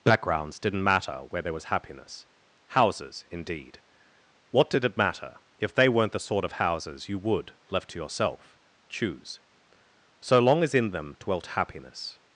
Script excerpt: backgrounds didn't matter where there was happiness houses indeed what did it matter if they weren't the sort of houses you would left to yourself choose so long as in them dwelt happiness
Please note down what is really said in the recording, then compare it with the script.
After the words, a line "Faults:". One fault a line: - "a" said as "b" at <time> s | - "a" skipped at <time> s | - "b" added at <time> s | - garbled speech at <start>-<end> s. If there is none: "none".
backgrounds didn't matter where there was happiness houses indeed what did it matter if they weren't the sort of houses you would left to yourself choose so long as in them dwelt happiness
Faults:
none